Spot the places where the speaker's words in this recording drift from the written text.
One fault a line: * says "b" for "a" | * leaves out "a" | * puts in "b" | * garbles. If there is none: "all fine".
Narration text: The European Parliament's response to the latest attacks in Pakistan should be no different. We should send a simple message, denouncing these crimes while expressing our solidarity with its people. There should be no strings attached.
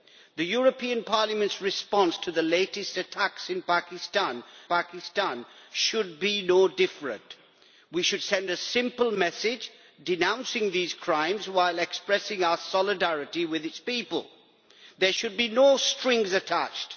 * puts in "Pakistan"